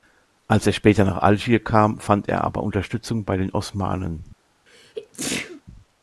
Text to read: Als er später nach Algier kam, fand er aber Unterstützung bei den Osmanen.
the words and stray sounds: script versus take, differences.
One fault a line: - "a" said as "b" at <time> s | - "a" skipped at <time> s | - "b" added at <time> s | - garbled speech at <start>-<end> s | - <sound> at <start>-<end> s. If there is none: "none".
- sneeze at 4.7-5.6 s